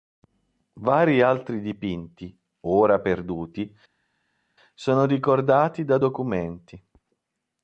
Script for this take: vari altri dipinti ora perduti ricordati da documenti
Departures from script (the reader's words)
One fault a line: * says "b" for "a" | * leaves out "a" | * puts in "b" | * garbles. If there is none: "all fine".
* puts in "sono"